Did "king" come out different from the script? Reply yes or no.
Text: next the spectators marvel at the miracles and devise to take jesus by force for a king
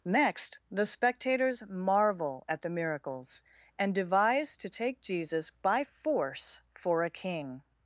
no